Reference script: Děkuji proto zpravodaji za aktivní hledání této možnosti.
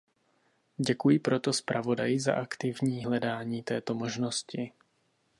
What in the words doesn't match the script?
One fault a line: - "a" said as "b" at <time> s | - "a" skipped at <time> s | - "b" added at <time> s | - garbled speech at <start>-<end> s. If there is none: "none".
none